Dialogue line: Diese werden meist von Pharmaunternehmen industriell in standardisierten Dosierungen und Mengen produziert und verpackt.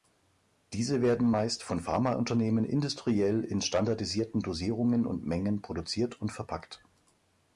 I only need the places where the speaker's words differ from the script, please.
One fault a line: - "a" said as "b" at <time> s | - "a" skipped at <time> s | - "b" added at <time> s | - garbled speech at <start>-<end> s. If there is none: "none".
none